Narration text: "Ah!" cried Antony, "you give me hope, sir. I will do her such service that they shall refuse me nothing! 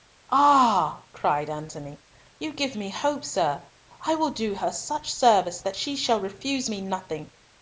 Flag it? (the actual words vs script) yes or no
yes